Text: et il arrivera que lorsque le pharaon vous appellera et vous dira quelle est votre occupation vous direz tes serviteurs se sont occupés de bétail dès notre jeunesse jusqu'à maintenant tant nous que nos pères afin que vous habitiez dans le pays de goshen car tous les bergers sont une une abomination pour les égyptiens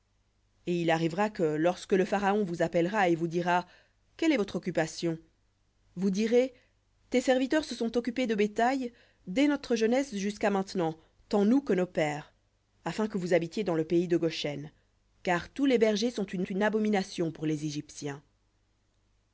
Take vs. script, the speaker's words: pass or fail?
pass